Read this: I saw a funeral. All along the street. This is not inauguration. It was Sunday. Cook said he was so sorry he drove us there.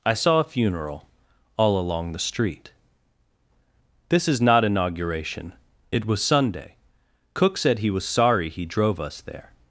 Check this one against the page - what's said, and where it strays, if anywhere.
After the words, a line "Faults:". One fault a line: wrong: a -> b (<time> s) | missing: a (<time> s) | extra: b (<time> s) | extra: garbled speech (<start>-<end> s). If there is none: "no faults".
I saw a funeral. All along the street. This is not inauguration. It was Sunday. Cook said he was sorry he drove us there.
Faults:
missing: so (8.0 s)